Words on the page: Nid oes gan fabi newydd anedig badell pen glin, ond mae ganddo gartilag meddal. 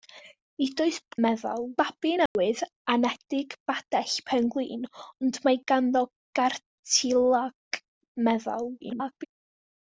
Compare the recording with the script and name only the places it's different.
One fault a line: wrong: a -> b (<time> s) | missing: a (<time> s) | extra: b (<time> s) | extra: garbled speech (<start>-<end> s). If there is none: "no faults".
wrong: gan -> meddal (1.3 s)
extra: garbled speech (8.8-9.3 s)